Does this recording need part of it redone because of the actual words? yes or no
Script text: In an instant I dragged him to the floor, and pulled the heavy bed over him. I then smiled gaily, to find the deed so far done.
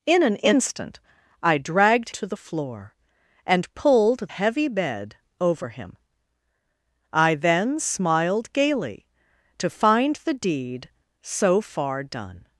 yes